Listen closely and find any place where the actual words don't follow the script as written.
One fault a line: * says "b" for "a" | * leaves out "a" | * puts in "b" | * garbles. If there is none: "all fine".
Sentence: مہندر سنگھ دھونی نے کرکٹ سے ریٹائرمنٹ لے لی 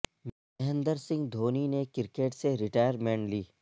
* leaves out "لے"